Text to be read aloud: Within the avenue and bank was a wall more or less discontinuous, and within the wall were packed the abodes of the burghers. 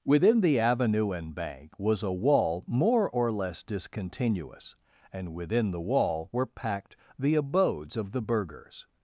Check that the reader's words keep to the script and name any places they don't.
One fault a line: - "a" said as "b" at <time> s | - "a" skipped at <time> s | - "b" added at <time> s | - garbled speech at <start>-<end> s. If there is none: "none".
none